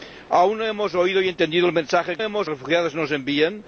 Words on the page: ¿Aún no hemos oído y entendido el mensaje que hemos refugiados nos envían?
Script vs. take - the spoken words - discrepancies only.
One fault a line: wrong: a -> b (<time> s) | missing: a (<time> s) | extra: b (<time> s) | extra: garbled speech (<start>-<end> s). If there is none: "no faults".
no faults